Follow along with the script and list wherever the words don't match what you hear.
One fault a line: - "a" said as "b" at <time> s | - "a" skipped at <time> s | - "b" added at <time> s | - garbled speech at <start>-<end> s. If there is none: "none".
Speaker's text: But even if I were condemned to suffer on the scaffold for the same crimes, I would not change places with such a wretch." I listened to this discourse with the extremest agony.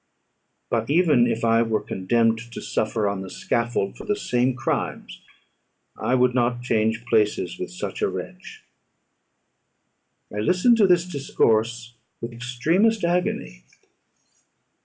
- "the" skipped at 12.3 s